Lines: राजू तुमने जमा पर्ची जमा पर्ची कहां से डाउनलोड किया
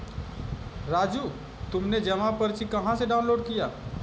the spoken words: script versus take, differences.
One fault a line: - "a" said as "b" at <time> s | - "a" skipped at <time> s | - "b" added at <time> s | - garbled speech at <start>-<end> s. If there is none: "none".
- "जमा पर्ची" skipped at 2.6 s